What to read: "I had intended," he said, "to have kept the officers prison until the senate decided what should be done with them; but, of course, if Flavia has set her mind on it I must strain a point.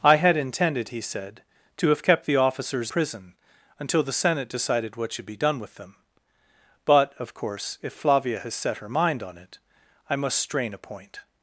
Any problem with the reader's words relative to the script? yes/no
no